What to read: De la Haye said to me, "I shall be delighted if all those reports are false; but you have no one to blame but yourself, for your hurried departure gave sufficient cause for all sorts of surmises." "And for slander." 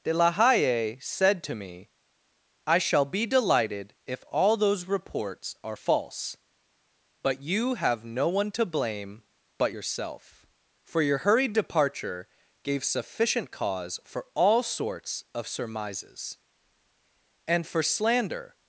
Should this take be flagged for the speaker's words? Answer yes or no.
no